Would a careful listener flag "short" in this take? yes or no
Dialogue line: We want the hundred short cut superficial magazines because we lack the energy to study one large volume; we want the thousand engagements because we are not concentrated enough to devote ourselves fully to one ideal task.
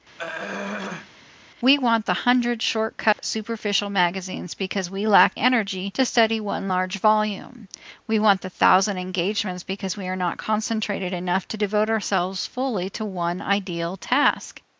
no